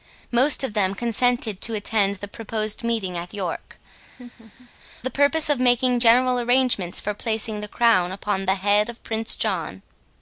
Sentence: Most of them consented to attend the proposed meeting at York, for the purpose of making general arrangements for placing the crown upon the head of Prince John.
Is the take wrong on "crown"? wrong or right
right